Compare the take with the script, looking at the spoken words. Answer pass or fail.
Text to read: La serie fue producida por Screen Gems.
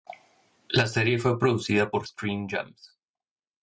pass